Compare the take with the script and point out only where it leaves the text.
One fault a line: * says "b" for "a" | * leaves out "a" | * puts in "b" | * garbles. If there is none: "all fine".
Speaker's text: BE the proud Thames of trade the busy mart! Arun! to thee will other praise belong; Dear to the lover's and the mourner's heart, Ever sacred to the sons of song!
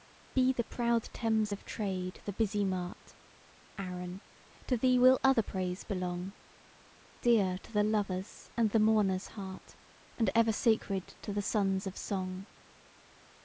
* puts in "And"